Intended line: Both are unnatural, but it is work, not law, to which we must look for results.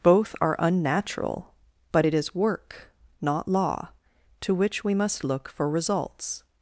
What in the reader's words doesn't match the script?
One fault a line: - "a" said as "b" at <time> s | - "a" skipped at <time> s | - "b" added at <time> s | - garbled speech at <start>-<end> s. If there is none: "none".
none